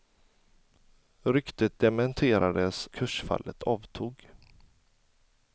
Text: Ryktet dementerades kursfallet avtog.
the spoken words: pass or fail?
pass